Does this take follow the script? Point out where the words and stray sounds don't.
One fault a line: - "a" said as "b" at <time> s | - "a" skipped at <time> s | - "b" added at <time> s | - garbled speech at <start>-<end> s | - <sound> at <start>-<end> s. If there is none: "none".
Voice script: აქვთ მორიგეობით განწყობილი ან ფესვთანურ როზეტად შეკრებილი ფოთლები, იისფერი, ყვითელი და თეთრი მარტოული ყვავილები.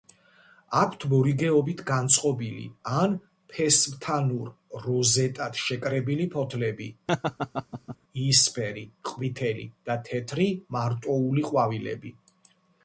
- laugh at 7.1-8.0 s